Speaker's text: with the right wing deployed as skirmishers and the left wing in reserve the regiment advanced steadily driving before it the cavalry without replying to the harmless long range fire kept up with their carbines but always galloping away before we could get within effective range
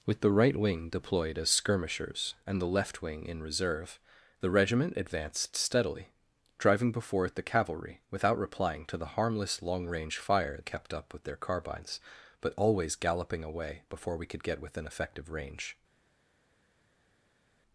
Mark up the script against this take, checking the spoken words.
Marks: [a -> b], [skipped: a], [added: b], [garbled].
with the right wing deployed as skirmishers and the left wing in reserve the regiment advanced steadily driving before it the cavalry without replying to the harmless long range fire kept up with their carbines but always galloping away before we could get within effective range